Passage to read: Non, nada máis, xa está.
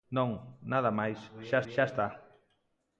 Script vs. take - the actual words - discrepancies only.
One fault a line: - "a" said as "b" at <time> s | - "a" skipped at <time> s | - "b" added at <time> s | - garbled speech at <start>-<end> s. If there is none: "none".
- "xa" added at 1.7 s